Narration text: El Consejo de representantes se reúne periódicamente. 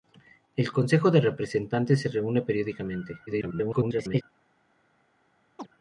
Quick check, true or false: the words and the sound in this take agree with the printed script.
false